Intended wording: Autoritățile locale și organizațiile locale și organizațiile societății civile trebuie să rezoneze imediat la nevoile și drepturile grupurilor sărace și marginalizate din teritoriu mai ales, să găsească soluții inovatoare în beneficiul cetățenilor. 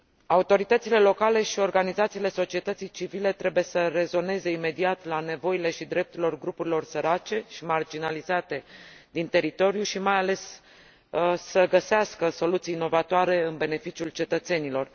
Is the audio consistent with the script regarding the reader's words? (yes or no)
no